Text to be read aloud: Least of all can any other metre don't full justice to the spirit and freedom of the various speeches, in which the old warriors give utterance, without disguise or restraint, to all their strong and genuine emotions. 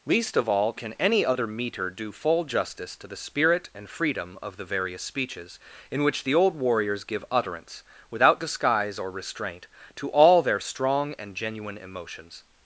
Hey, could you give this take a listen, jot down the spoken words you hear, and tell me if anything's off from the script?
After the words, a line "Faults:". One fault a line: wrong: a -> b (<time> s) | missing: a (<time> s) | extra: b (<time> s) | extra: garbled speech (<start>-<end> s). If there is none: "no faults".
Least of all can any other metre do full justice to the spirit and freedom of the various speeches, in which the old warriors give utterance, without disguise or restraint, to all their strong and genuine emotions.
Faults:
wrong: don't -> do (1.9 s)